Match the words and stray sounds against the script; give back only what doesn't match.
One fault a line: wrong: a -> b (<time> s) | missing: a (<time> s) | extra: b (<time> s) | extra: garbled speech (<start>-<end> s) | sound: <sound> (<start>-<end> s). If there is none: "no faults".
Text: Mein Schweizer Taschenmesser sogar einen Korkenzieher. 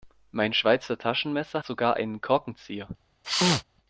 sound: sneeze (3.2-3.6 s)